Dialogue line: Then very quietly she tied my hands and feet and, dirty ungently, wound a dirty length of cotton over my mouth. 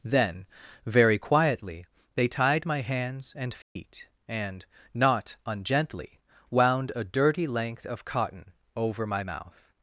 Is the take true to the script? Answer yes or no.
no